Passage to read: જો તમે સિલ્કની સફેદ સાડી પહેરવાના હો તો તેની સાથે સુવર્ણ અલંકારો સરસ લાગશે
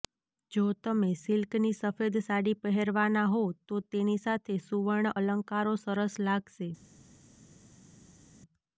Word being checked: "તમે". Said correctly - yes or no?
yes